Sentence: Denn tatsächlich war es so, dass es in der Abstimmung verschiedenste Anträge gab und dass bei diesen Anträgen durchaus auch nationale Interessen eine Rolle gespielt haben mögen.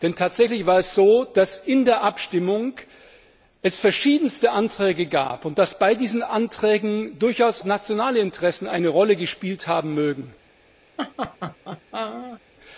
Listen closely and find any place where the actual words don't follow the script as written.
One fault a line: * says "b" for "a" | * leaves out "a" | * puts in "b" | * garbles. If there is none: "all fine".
* leaves out "auch"